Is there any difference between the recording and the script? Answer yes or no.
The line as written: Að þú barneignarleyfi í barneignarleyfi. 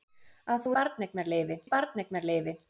no